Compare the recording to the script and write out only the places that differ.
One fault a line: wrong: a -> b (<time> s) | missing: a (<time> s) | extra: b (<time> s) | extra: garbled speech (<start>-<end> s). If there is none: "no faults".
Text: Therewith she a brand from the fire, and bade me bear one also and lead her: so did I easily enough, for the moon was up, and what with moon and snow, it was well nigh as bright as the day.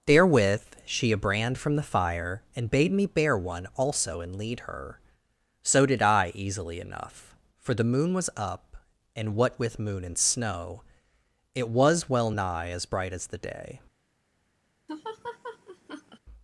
no faults